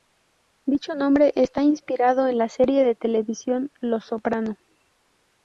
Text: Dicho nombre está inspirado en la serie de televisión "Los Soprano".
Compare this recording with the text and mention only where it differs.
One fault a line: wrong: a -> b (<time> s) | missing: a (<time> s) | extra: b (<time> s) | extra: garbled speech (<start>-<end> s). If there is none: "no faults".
no faults